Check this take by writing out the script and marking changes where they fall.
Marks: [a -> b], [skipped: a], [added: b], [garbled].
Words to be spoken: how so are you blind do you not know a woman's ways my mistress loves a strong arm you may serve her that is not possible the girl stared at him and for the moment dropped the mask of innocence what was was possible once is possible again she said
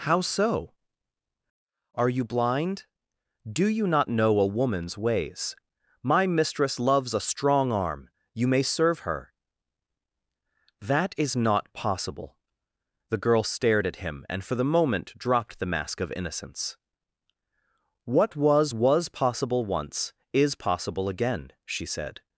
how so are you blind do you not know a woman's ways my mistress loves a strong arm you may serve her that is not possible the girl stared at him and for the moment dropped the mask of innocence what was was possible once is possible again she said